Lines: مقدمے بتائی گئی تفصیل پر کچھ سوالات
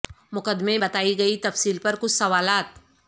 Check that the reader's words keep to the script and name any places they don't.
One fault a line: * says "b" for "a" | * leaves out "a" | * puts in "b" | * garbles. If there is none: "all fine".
all fine